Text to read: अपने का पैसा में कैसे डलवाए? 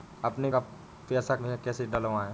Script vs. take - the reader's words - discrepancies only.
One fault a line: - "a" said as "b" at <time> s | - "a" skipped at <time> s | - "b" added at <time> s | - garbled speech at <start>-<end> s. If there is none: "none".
none